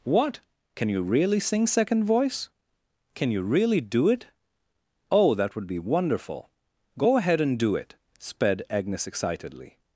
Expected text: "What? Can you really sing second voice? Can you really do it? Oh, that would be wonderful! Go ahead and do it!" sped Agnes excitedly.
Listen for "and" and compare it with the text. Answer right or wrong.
right